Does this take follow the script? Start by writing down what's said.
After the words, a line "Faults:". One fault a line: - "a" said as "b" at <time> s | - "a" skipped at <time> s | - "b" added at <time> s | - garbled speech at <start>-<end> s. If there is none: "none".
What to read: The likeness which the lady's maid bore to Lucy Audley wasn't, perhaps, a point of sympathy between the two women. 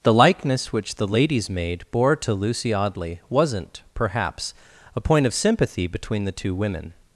The likeness which the lady's maid bore to Lucy Audley wasn't, perhaps, a point of sympathy between the two women.
Faults:
none